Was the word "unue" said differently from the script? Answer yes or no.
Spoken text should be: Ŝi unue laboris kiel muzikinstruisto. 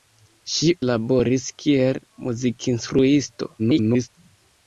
yes